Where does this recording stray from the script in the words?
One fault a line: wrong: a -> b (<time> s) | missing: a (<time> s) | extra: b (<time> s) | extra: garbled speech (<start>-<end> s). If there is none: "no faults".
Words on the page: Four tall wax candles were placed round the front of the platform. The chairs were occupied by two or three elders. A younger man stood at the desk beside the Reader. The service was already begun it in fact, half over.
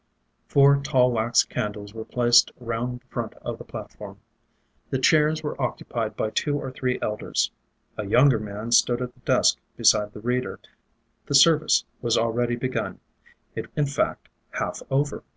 no faults